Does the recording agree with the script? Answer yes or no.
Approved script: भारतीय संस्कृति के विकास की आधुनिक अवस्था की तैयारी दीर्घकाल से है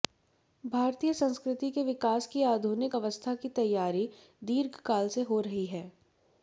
no